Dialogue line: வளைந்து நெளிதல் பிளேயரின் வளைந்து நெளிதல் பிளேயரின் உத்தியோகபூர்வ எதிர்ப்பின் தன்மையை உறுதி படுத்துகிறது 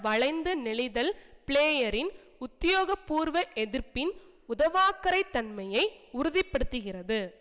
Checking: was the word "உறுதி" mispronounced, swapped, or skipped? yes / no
no